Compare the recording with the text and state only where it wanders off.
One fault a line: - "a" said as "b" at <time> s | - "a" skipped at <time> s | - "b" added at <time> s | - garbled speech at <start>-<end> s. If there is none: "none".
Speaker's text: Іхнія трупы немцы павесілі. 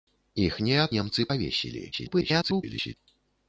- "трупы" skipped at 0.9 s
- garbled speech at 1.9-2.9 s